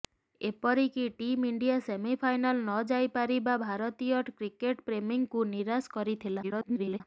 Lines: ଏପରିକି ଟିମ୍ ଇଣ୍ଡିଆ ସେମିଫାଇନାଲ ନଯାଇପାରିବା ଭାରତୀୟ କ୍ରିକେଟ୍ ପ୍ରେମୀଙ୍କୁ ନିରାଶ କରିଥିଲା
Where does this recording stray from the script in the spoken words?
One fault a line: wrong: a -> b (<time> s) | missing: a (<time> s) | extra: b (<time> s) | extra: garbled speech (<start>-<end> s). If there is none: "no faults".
extra: garbled speech (6.4-7.0 s)